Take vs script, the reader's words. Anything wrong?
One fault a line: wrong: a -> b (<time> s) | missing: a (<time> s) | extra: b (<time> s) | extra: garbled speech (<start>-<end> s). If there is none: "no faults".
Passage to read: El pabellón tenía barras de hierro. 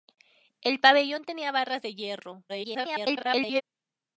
extra: garbled speech (2.5-3.6 s)